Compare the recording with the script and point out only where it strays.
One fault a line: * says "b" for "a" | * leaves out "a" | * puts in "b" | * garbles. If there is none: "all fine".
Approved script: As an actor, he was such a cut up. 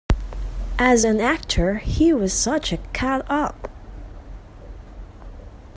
all fine